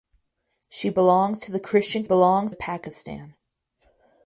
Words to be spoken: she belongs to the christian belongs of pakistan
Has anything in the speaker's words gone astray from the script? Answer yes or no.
no